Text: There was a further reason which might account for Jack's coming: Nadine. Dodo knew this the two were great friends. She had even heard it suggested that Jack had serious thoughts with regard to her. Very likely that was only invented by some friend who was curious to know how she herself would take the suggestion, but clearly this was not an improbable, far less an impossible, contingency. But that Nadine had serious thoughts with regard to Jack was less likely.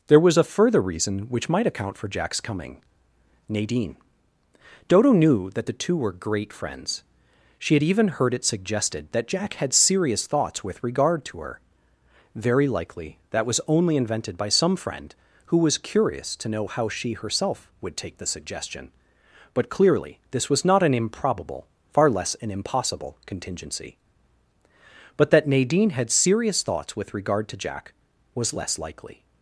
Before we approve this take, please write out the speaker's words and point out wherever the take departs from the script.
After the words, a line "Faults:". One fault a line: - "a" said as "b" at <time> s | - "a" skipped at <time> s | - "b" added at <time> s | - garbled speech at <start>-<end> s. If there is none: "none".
There was a further reason which might account for Jack's coming: Nadine. Dodo knew that the two were great friends. She had even heard it suggested that Jack had serious thoughts with regard to her. Very likely that was only invented by some friend who was curious to know how she herself would take the suggestion, but clearly this was not an improbable, far less an impossible, contingency. But that Nadine had serious thoughts with regard to Jack was less likely.
Faults:
- "this" said as "that" at 5.5 s